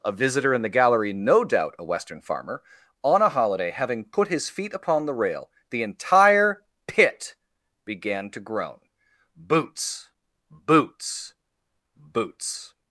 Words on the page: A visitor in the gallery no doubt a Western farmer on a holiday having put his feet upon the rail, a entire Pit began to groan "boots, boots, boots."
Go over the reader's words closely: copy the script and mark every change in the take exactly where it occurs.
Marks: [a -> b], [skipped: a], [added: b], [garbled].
A visitor in the gallery no doubt a Western farmer on a holiday having put his feet upon the rail, [a -> the] entire Pit began to groan "boots, boots, boots."